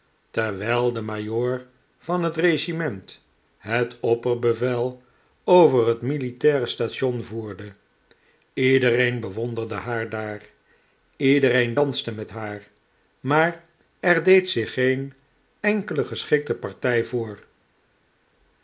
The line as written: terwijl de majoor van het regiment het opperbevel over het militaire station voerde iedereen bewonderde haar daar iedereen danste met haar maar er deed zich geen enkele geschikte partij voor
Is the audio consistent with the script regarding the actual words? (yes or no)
yes